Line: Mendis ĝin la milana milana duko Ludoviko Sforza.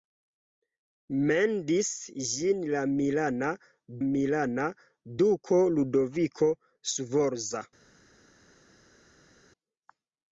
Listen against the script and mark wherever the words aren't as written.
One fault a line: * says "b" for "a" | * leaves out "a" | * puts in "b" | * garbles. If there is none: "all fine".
all fine